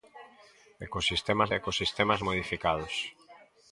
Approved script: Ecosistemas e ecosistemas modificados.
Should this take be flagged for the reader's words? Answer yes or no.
no